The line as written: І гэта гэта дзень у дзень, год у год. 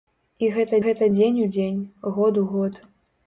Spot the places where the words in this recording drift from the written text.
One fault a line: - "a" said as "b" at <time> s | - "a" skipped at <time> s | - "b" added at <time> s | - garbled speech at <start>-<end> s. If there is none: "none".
none